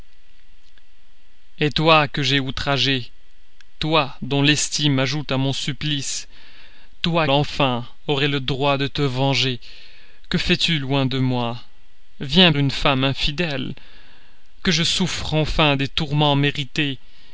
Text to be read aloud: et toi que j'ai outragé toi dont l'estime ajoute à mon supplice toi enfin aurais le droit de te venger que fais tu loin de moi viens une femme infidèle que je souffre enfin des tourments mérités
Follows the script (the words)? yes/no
yes